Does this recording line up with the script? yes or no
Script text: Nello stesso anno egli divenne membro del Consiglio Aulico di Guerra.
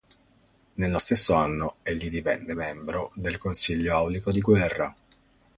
yes